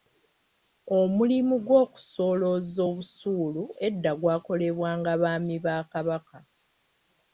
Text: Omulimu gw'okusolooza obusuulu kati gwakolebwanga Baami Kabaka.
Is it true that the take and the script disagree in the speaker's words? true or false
true